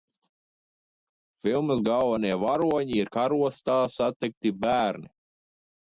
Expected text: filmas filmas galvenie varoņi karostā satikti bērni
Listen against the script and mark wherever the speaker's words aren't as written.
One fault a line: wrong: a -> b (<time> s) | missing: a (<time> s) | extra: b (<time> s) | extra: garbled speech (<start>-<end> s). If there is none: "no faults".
missing: filmas (1.8 s)
extra: ir (3.0 s)